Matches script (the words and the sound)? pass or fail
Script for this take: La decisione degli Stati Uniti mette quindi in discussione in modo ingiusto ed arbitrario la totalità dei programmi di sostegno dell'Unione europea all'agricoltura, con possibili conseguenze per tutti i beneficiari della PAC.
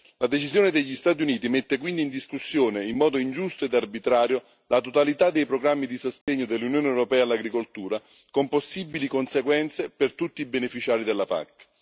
fail